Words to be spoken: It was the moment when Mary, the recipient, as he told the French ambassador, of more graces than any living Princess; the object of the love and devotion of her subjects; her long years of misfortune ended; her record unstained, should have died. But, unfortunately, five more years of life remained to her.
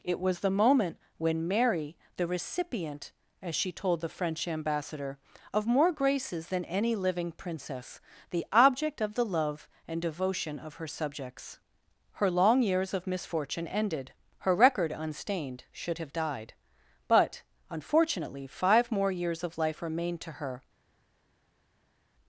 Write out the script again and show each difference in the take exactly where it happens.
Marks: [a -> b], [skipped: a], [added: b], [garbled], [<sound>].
It was the moment when Mary, the recipient, as [he -> she] told the French ambassador, of more graces than any living Princess; the object of the love and devotion of her subjects; her long years of misfortune ended; her record unstained, should have died. But, unfortunately, five more years of life remained to her.